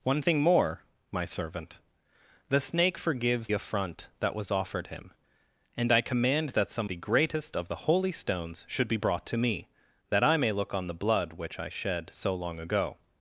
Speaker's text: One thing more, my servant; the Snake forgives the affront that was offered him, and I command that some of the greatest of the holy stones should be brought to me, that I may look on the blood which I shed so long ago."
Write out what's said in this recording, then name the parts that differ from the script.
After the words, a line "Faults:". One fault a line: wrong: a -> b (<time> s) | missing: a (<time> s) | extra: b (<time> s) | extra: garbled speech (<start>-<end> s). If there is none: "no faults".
One thing more, my servant; the Snake forgives affront that was offered him, and I command that some the greatest of the holy stones should be brought to me, that I may look on the blood which I shed so long ago."
Faults:
missing: the (3.5 s)
missing: of (6.9 s)